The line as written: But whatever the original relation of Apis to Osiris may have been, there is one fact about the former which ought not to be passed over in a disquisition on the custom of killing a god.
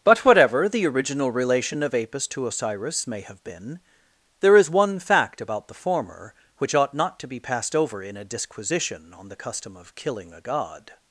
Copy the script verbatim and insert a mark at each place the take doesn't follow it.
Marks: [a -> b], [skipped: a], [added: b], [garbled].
But whatever the original relation of Apis to Osiris may have been, there is one fact about the former which ought not to be passed over in a disquisition on the custom of killing a god.